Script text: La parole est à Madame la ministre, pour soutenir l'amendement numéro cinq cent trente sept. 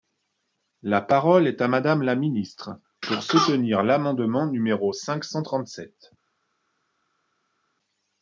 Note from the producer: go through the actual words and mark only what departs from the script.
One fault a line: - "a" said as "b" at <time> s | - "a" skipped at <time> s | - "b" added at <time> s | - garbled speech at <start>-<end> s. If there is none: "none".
none